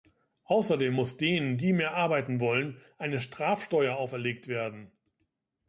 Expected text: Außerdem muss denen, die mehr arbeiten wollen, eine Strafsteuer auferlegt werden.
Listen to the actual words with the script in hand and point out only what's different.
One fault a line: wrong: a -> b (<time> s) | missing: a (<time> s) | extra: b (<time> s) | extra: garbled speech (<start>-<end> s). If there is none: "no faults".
no faults